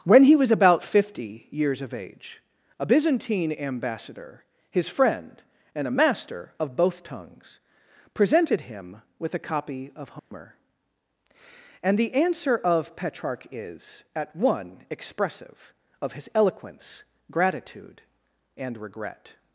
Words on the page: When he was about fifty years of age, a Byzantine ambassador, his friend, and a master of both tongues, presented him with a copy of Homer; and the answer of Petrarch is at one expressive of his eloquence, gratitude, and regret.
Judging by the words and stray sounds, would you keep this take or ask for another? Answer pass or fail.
fail